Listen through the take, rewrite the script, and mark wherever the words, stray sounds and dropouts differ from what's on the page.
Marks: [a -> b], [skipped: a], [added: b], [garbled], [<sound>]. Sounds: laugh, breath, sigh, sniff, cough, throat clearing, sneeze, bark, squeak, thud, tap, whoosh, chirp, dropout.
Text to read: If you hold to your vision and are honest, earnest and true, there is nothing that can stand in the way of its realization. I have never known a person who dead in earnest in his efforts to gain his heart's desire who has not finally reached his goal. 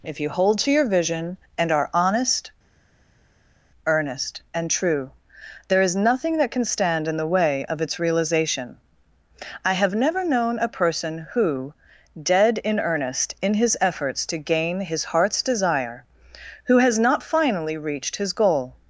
If you hold to your vision and are honest, earnest and true, there is nothing that can stand in the way of its realization. I have never known a person who dead in earnest in his efforts to gain his heart's desire who has not finally reached his goal.